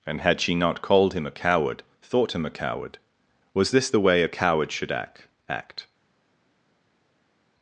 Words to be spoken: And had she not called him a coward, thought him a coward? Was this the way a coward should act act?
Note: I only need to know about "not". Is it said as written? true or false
true